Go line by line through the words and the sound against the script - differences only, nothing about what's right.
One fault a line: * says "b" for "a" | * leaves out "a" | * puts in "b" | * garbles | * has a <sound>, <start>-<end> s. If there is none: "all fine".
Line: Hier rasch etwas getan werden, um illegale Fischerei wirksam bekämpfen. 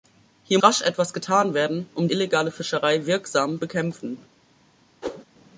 * has a whoosh, 5.0-5.2 s